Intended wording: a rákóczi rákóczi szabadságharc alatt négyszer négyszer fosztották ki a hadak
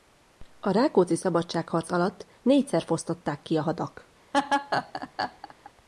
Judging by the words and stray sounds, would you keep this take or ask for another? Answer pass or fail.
fail